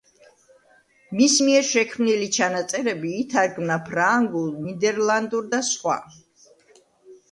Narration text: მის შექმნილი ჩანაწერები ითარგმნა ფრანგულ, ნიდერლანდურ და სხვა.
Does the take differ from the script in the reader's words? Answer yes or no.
yes